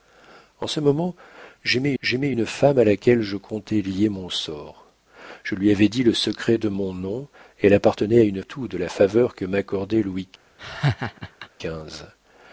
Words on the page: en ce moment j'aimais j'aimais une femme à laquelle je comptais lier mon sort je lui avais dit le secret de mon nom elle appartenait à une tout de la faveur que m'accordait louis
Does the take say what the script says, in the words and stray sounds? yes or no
no